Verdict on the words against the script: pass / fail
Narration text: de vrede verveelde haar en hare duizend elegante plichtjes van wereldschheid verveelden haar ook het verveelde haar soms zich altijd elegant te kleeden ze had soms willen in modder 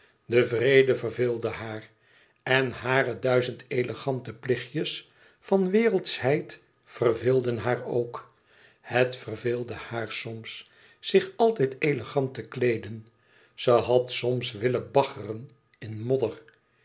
fail